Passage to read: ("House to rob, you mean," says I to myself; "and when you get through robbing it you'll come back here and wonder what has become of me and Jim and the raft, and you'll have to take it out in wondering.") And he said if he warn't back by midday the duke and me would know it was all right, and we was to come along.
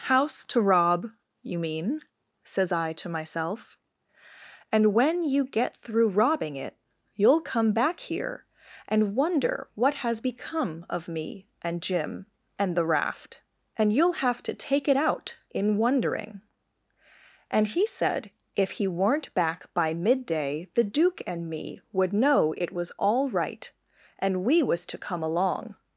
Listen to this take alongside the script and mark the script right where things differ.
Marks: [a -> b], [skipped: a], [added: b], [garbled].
("House to rob, you mean," says I to myself; "and when you get through robbing it you'll come back here and wonder what has become of me and Jim and the raft, and you'll have to take it out in wondering.") And he said if he [warn't -> weren't] back by midday the duke and me would know it was all right, and we was to come along.